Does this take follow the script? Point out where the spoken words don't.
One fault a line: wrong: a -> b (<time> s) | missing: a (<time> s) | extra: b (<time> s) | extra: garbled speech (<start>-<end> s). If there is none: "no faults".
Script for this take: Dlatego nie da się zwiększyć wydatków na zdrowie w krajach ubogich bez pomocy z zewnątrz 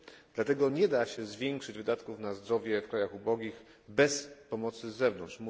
no faults